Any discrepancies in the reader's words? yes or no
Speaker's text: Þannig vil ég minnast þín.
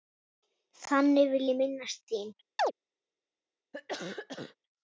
no